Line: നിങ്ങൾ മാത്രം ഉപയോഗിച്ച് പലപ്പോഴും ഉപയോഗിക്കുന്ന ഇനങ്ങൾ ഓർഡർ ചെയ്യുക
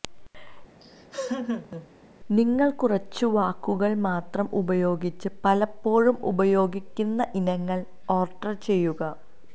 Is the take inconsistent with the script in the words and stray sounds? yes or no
yes